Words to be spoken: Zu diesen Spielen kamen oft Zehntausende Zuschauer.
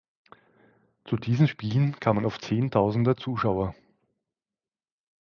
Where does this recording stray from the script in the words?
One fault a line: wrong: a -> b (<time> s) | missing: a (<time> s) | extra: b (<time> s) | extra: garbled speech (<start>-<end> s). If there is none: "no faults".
no faults